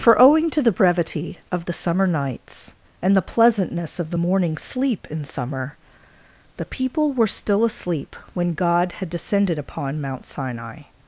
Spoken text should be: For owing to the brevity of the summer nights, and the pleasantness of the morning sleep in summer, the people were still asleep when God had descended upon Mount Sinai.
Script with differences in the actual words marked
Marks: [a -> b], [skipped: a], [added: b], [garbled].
For owing to the brevity of the summer nights, and the pleasantness of the morning sleep in summer, the people were still asleep when God had descended upon Mount Sinai.